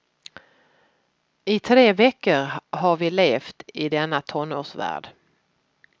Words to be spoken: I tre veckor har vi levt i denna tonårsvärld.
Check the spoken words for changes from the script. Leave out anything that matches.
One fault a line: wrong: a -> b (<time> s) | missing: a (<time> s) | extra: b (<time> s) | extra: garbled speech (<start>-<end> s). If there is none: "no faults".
no faults